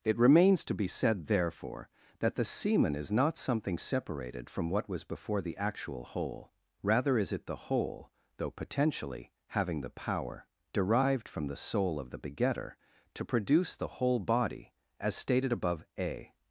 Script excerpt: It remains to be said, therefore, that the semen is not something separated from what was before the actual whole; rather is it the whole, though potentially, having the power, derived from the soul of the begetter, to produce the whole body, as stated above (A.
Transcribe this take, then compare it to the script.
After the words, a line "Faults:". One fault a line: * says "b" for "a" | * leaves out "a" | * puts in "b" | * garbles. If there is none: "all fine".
It remains to be said, therefore, that the semen is not something separated from what was before the actual whole; rather is it the whole, though potentially, having the power, derived from the soul of the begetter, to produce the whole body, as stated above (A.
Faults:
all fine